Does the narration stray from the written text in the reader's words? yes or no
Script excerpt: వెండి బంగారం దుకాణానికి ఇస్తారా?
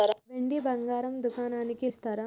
no